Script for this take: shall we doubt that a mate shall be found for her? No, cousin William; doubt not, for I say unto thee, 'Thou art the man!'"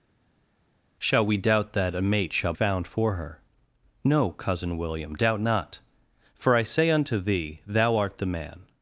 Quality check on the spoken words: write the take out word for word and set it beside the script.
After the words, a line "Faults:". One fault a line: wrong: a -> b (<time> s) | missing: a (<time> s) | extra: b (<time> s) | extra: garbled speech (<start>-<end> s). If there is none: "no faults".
shall we doubt that a mate shall found for her? No, cousin William; doubt not, for I say unto thee, 'Thou art the man!'"
Faults:
missing: be (2.5 s)